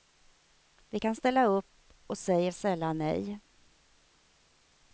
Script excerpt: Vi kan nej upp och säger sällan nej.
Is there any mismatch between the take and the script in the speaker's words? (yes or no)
yes